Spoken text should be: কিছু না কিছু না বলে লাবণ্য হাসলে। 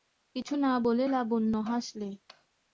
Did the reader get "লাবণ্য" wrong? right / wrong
right